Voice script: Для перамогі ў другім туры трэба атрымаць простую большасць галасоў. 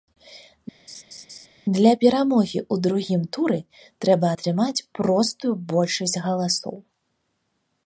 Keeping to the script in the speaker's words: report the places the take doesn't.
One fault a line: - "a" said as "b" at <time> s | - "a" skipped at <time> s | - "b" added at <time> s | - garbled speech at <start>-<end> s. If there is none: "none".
none